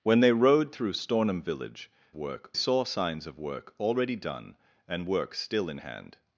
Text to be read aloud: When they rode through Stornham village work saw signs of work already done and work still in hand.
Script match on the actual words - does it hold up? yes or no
yes